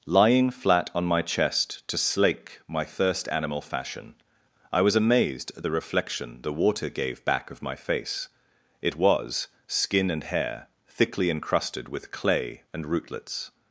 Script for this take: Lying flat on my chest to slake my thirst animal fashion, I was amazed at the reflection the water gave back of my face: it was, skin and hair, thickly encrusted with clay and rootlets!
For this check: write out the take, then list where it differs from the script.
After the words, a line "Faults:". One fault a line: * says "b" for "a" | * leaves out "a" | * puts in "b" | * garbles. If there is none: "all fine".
Lying flat on my chest to slake my thirst animal fashion, I was amazed at the reflection the water gave back of my face: it was, skin and hair, thickly encrusted with clay and rootlets!
Faults:
all fine